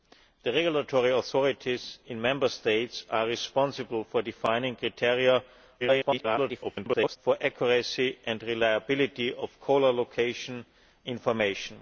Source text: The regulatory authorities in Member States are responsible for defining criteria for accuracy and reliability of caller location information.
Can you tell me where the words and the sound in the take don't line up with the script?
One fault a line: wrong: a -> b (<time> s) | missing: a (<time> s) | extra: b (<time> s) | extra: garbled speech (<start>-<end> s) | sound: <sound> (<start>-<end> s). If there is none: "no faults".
extra: garbled speech (5.8-7.2 s)